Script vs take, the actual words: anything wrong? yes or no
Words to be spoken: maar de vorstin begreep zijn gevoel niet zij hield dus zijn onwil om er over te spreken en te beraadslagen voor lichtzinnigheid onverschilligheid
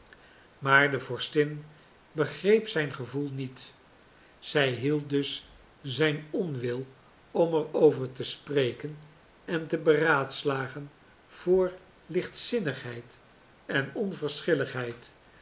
yes